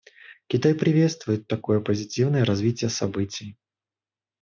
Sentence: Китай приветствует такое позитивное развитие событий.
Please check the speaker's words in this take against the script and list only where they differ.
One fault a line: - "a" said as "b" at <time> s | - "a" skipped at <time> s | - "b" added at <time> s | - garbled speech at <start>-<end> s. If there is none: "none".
none